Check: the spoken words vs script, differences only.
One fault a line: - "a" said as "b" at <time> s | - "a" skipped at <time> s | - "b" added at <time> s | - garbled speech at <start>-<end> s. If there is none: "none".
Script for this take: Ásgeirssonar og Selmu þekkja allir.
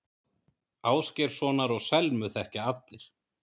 none